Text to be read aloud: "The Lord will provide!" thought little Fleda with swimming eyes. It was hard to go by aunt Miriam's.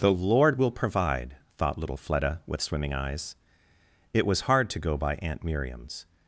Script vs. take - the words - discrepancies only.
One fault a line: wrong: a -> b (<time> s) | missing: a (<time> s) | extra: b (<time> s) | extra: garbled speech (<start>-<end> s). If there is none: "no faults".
no faults